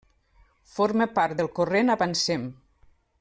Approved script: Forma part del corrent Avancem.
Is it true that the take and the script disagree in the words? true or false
false